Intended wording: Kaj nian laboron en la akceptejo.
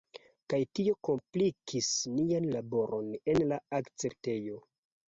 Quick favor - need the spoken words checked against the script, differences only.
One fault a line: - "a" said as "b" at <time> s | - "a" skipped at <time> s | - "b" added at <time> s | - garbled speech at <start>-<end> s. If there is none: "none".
- "tio komplikis" added at 0.8 s